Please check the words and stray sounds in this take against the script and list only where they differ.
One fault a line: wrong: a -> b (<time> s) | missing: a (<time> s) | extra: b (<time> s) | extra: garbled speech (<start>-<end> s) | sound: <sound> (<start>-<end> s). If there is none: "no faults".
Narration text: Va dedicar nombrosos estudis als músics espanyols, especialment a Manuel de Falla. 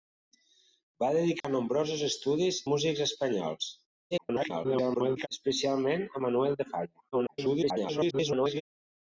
sound: dropout (1.4-1.4 s)
missing: als (2.6 s)
extra: garbled speech (4.1-5.3 s)
extra: garbled speech (7.1-8.6 s)